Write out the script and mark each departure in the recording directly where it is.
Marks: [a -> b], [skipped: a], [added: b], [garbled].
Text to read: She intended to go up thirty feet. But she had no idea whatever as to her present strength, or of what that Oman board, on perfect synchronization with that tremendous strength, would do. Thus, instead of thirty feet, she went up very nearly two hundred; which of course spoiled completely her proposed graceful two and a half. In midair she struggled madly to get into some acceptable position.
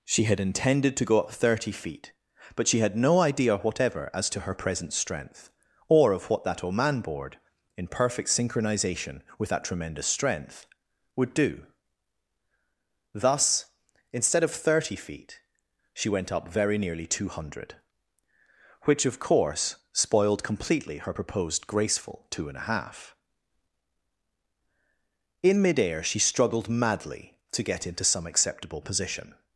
She [added: had] intended to go up thirty feet. But she had no idea whatever as to her present strength, or of what that Oman board, [on -> in] perfect synchronization with that tremendous strength, would do. Thus, instead of thirty feet, she went up very nearly two hundred; which of course spoiled completely her proposed graceful two and a half. In midair she struggled madly to get into some acceptable position.